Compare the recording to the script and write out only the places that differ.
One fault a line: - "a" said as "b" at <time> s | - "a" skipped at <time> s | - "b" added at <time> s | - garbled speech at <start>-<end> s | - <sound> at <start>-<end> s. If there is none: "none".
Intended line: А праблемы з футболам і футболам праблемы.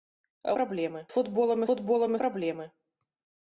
none